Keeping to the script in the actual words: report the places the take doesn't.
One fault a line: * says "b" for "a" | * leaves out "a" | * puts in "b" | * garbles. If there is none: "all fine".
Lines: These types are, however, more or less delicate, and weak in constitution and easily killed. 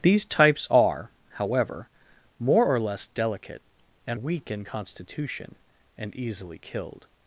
all fine